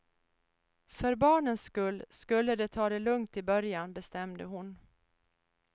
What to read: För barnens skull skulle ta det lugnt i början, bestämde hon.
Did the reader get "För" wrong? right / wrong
right